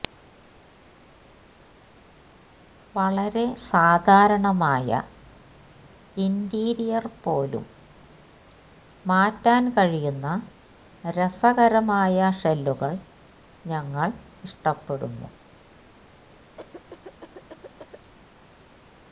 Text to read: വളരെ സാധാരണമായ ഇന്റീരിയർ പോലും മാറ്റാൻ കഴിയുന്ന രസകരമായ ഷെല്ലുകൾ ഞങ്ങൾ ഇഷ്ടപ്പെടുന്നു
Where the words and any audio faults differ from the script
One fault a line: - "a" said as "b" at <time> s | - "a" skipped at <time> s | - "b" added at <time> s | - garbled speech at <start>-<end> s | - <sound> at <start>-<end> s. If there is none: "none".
- cough at 16.6-18.1 s